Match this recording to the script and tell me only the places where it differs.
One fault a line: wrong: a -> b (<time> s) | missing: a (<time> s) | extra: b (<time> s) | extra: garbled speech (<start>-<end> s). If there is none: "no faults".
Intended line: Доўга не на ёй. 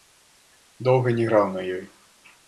extra: граў (1.3 s)